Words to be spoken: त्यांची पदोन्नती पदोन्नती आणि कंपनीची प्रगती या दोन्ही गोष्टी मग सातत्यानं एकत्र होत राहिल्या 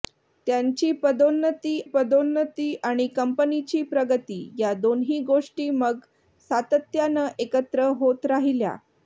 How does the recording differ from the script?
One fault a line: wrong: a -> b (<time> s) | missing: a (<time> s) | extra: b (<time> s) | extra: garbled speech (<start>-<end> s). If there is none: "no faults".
no faults